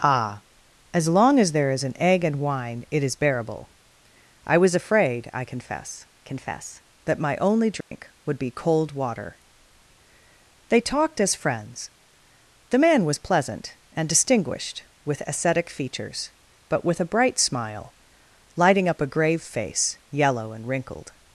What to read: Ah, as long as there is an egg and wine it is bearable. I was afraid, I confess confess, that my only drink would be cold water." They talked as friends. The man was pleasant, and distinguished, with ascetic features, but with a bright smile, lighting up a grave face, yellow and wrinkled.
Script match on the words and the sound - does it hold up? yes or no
no